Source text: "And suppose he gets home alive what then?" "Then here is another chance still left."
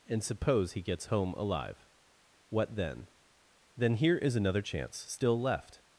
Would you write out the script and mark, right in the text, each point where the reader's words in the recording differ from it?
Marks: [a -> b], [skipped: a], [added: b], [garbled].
"And suppose he gets home alive what then?" "Then here is another chance still left."